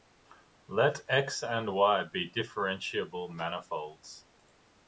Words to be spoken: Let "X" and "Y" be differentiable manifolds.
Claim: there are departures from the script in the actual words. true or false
false